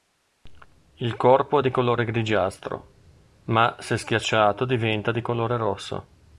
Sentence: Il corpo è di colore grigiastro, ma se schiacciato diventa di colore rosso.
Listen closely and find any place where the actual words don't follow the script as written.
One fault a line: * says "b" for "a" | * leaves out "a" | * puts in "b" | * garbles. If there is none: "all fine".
all fine